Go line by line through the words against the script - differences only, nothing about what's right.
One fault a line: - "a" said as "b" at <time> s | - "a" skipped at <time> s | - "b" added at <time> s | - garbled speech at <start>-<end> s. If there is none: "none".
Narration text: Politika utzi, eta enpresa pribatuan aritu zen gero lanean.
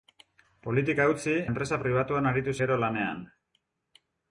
- "eta" skipped at 1.3 s
- "zen" skipped at 2.6 s